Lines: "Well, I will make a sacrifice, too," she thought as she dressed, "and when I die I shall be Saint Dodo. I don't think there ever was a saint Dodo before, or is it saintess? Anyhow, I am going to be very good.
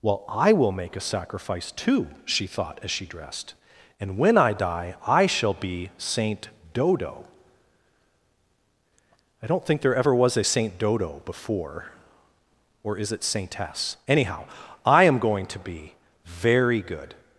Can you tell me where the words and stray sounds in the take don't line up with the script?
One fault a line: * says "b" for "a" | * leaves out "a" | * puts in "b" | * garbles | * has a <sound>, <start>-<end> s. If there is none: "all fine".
all fine